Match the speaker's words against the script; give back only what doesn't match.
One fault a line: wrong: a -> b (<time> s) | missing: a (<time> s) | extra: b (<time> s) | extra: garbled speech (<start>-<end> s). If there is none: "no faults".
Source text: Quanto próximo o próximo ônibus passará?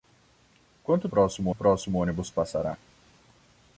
no faults